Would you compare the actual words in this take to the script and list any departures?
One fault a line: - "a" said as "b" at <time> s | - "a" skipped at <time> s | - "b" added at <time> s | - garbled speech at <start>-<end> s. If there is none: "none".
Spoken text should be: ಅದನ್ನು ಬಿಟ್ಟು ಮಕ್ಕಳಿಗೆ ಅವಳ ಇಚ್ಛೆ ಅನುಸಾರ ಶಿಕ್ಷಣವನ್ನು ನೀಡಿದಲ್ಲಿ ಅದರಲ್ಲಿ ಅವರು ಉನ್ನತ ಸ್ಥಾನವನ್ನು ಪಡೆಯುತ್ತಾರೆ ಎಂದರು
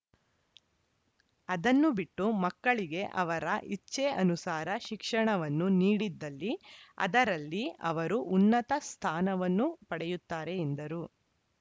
- "ಅವಳ" said as "ಅವರ" at 3.2 s